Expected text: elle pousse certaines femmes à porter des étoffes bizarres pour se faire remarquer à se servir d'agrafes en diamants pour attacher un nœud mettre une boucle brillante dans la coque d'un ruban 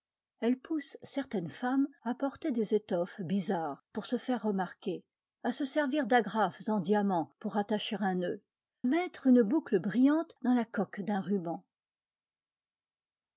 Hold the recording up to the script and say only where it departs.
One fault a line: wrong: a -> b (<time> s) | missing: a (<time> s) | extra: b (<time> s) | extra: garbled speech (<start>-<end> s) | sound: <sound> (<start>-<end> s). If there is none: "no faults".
no faults